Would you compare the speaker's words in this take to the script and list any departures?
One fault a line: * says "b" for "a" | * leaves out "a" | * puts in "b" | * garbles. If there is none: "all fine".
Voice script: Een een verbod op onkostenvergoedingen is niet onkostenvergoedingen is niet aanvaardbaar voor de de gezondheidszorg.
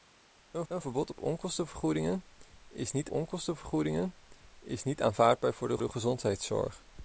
all fine